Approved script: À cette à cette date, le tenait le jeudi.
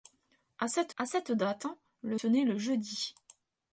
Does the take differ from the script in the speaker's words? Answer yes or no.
no